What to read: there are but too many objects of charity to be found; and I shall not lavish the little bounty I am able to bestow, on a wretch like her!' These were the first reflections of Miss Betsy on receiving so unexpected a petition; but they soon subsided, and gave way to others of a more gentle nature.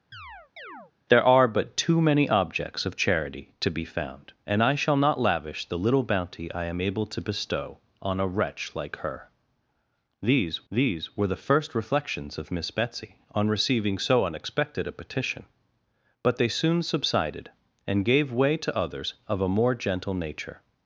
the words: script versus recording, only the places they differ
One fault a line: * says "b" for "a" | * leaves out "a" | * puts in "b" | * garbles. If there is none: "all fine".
* puts in "these"